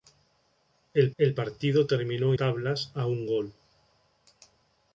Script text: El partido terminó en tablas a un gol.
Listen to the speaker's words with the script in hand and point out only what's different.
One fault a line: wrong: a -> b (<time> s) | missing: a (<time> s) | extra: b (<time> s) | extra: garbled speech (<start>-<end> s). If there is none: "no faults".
extra: el (1.2 s)
missing: en (2.3 s)